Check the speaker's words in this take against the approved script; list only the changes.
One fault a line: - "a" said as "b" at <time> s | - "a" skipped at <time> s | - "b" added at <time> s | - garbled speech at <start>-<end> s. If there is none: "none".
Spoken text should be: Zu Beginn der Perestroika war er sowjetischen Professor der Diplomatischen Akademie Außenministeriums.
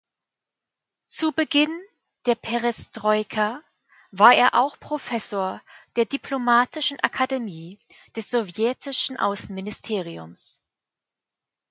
- "sowjetischen" said as "auch" at 4.5 s
- "des sowjetischen" added at 8.1 s